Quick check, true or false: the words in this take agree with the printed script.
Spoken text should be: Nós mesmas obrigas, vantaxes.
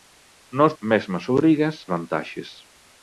true